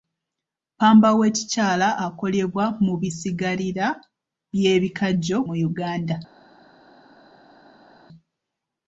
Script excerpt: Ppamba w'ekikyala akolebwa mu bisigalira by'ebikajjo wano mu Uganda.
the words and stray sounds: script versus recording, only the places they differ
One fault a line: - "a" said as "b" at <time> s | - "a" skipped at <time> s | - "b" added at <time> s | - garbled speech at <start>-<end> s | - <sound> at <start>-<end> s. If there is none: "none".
- "wano" skipped at 5.4 s